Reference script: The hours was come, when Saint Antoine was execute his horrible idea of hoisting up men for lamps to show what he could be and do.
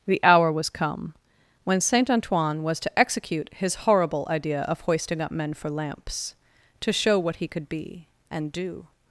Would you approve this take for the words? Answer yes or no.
no